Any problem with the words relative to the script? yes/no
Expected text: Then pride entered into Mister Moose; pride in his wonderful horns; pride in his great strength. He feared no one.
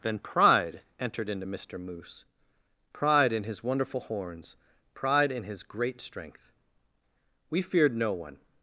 yes